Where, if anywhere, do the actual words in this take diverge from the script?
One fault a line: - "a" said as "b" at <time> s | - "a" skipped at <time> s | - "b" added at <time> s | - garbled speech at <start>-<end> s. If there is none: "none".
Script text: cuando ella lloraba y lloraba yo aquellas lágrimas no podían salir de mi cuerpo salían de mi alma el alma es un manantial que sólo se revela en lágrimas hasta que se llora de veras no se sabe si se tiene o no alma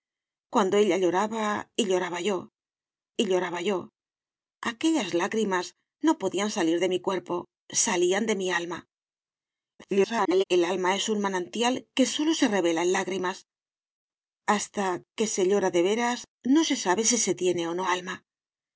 - "y lloraba yo" added at 3.2 s
- garbled speech at 9.8-10.4 s